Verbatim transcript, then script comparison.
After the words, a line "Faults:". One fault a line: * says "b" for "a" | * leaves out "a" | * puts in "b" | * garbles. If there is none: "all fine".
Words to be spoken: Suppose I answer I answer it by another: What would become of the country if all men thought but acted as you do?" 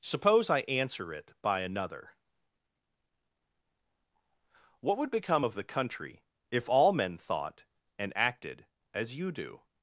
Suppose I answer it by another: What would become of the country if all men thought and acted as you do?"
Faults:
* leaves out "I answer"
* says "and" for "but"